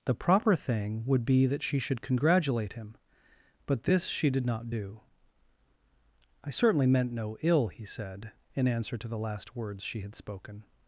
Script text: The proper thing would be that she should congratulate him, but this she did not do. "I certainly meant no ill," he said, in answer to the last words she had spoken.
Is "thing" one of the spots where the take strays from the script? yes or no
no